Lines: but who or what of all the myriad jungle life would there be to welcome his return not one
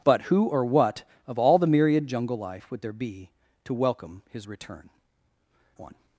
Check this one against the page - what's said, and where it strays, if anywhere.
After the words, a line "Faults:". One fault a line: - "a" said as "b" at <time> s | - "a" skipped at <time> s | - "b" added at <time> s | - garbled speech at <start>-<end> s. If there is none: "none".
but who or what of all the myriad jungle life would there be to welcome his return one
Faults:
- "not" skipped at 4.9 s